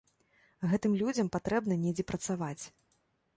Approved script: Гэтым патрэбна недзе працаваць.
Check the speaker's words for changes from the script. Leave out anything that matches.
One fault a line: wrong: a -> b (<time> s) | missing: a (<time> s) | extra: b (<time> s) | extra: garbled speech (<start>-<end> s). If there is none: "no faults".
extra: людзям (1.0 s)